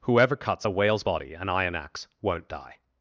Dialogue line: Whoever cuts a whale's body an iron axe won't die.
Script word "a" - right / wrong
right